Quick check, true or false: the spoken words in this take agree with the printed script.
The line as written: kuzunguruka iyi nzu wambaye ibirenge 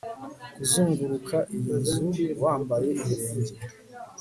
true